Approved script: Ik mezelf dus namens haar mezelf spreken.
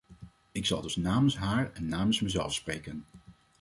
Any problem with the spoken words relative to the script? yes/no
yes